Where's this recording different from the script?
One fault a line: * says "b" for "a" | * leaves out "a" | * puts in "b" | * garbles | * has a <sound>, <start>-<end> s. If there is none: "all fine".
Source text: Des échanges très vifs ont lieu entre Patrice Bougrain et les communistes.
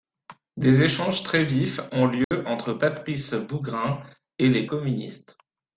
* has a dropout, 2.2-2.3 s